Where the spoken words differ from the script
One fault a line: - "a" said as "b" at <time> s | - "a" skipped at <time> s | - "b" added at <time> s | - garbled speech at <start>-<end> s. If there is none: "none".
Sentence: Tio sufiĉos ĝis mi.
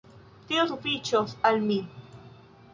- "ĝis" said as "al" at 1.5 s